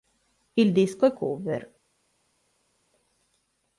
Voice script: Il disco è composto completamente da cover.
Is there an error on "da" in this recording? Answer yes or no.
yes